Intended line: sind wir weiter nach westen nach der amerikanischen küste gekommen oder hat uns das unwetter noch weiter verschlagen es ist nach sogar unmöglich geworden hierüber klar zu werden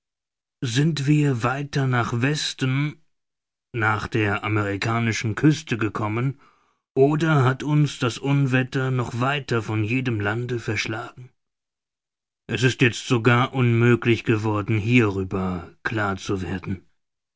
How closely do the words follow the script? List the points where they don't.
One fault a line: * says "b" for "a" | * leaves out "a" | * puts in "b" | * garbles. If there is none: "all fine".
* puts in "von jedem lande"
* says "jetzt" for "nach"